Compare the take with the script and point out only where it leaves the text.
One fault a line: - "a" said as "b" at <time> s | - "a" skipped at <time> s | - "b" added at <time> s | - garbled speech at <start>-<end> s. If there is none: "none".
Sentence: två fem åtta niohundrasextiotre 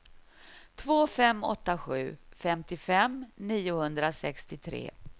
- "sju femtiofem" added at 1.8 s